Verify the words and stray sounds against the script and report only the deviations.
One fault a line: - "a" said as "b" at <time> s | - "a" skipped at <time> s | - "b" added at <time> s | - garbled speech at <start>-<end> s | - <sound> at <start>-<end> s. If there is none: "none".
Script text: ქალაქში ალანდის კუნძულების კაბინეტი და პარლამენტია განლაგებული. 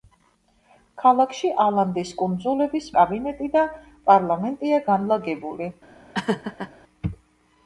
- laugh at 6.1-6.7 s